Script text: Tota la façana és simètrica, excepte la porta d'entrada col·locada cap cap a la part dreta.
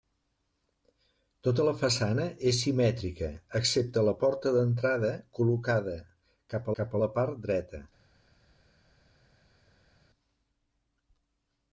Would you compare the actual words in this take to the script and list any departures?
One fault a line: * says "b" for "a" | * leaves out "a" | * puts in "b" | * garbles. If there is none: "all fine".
all fine